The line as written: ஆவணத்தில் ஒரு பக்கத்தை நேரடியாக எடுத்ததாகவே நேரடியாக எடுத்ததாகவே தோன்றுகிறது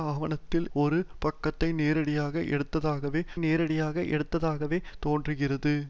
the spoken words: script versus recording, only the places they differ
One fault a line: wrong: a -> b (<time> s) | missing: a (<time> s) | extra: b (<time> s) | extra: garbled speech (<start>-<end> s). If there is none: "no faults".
no faults